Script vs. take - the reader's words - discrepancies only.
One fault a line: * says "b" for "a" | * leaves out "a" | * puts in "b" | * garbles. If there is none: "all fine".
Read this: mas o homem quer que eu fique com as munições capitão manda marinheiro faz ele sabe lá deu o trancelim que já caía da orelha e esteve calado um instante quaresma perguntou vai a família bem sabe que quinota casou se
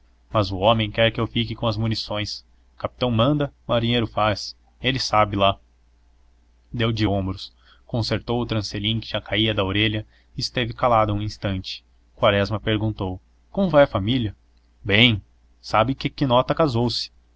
* puts in "de ombros concertou"
* puts in "como"